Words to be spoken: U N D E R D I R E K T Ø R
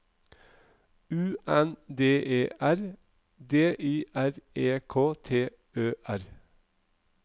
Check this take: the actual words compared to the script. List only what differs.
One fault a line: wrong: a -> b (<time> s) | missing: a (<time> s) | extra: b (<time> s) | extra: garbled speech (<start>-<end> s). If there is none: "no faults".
no faults